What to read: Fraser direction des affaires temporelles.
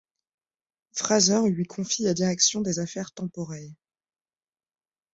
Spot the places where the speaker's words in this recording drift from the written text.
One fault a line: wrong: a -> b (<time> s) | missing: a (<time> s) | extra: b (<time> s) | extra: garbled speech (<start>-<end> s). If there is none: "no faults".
extra: lui confie la (1.5 s)